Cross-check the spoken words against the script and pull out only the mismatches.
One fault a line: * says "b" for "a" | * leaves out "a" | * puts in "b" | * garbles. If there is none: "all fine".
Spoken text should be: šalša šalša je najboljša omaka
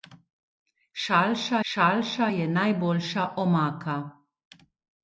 all fine